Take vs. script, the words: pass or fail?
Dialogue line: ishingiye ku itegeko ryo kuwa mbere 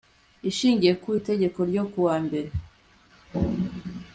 pass